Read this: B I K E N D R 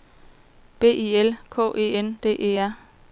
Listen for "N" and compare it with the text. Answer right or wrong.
right